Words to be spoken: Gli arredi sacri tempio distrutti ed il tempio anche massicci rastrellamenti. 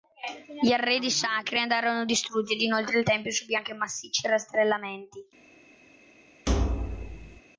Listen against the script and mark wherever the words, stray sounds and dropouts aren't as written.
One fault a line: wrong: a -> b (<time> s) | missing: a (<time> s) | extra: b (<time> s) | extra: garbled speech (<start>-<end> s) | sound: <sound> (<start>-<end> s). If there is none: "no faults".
wrong: tempio -> andarono (1.6 s)
extra: inoltre (2.6 s)
extra: subì (3.3 s)
sound: thud (6.5-7.4 s)